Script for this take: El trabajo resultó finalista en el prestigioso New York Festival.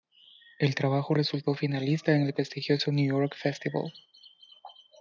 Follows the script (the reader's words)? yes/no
yes